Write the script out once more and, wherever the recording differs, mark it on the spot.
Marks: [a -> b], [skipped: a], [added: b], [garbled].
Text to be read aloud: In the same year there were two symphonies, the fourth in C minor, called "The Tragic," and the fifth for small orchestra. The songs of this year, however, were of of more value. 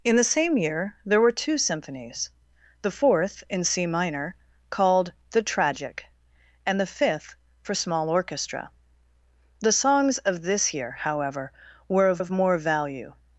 In the same year there were two symphonies, the fourth in C minor, called "The Tragic," and the fifth for small orchestra. The songs of this year, however, were of of more value.